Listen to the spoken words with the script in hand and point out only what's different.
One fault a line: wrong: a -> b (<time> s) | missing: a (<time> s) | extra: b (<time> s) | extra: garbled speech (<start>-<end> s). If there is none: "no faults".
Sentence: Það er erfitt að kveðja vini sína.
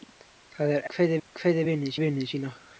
wrong: erfitt -> kveðja (0.9 s)
extra: vini (2.0 s)